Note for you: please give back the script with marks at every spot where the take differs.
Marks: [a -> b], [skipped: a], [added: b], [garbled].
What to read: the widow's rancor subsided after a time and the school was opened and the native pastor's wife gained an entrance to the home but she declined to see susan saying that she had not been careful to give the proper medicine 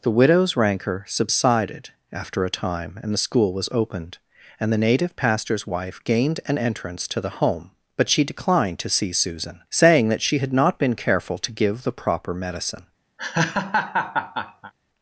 the widow's rancor subsided after a time and the school was opened and the native pastor's wife gained an entrance to the home but she declined to see susan saying that she had not been careful to give the proper medicine